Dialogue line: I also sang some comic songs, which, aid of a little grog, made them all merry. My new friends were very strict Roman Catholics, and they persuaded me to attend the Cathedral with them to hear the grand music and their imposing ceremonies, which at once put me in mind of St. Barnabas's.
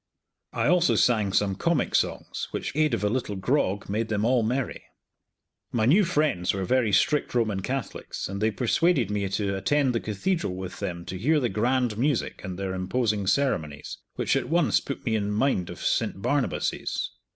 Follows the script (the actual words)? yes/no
yes